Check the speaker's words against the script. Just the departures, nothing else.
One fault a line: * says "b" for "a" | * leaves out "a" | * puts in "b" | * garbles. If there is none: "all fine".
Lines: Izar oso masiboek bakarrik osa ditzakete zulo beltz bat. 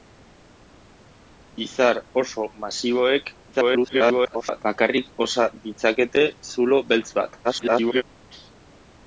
* garbles
* garbles